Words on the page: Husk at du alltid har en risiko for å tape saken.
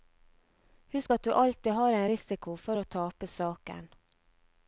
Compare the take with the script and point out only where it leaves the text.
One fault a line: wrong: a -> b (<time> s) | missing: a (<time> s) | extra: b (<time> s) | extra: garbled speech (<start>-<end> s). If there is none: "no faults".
no faults